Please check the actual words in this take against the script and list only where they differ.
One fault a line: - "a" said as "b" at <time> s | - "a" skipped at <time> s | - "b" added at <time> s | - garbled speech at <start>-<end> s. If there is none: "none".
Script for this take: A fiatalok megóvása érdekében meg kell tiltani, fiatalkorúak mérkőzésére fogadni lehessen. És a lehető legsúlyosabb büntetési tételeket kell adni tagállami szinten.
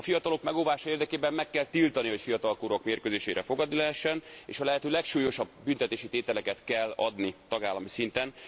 - "hogy" added at 2.1 s